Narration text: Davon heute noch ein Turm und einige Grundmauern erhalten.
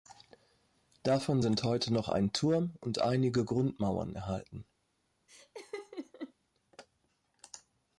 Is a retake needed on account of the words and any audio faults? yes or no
yes